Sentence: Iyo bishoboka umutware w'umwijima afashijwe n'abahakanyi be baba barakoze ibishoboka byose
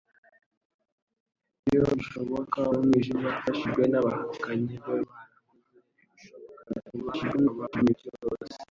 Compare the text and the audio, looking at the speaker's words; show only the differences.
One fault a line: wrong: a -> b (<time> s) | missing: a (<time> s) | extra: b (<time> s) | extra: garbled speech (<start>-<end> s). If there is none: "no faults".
missing: umutware (2.6 s)
missing: baba (5.0 s)
extra: garbled speech (6.9-7.9 s)